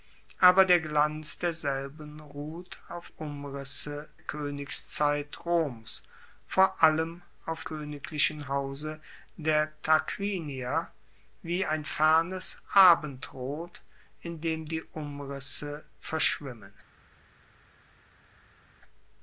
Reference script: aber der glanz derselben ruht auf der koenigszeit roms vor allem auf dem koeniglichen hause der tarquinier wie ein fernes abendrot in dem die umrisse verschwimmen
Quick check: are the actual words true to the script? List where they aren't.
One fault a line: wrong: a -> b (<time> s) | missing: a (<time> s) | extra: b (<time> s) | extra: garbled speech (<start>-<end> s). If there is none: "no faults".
wrong: der -> umrisse (3.1 s)
missing: dem (7.6 s)